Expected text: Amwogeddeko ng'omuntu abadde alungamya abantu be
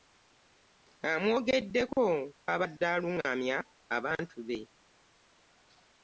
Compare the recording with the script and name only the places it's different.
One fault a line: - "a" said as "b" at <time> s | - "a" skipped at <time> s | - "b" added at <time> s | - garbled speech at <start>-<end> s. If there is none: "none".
- "ng'omuntu" skipped at 2.0 s